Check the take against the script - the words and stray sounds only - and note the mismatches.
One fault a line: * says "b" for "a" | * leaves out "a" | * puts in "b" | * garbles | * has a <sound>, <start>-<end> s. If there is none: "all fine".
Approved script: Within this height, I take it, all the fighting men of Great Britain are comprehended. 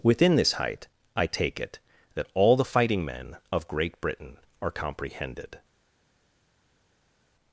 * puts in "that"